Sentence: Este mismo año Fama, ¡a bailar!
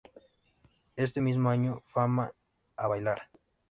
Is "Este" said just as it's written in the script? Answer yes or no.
yes